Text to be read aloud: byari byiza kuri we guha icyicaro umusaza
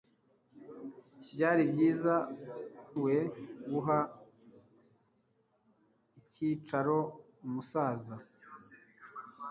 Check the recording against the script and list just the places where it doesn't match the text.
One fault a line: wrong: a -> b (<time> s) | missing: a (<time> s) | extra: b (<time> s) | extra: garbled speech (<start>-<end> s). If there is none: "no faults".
missing: kuri (2.1 s)